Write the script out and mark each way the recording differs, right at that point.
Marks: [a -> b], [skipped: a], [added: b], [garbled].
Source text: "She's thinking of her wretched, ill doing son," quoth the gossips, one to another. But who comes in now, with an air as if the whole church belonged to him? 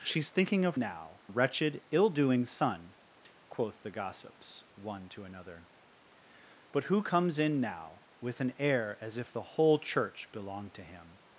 "She's thinking of [her -> now] wretched, ill doing son," quoth the gossips, one to another. But who comes in now, with an air as if the whole church belonged to him?